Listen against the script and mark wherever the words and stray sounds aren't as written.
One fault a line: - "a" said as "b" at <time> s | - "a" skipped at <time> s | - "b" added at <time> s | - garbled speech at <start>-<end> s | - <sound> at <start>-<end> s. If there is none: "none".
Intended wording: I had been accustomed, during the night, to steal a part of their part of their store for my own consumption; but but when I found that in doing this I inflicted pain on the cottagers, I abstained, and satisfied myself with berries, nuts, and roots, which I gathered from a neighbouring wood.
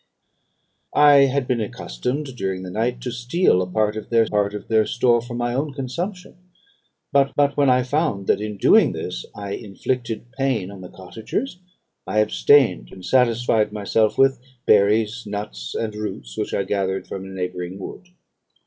none